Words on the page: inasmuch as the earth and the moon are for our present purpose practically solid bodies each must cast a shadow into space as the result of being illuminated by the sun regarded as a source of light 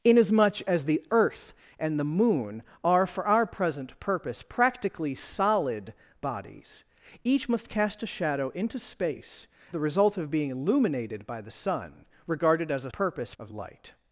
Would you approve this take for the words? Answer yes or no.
no